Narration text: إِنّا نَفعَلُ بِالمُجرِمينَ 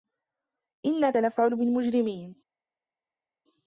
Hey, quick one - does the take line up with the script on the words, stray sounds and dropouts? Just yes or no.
yes